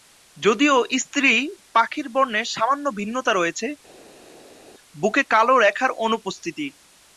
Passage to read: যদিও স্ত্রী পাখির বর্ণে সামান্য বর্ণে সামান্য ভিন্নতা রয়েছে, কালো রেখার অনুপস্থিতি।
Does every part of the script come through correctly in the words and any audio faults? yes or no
no